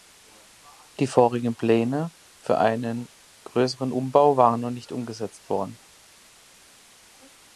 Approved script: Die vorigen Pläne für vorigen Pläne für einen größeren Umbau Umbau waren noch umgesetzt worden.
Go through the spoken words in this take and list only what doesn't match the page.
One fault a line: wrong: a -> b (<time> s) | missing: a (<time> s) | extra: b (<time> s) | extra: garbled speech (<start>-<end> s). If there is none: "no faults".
missing: vorigen Pläne für (2.6 s)
missing: Umbau (4.4 s)
extra: nicht (4.7 s)